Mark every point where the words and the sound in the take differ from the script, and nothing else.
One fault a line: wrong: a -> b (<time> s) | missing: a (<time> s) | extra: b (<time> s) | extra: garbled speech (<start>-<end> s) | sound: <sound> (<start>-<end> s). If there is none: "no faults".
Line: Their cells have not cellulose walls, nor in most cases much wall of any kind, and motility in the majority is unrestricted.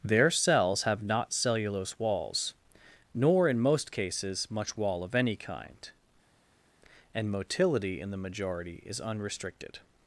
no faults